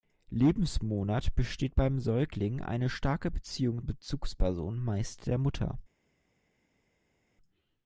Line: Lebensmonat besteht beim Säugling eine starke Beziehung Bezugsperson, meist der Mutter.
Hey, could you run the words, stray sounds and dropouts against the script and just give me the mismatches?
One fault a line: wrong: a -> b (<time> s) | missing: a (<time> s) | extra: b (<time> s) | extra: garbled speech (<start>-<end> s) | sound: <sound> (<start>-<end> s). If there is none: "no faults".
no faults